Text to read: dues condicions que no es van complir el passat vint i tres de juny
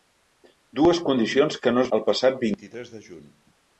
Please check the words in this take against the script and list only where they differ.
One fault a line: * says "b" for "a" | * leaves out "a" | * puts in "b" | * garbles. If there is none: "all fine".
* leaves out "van complir"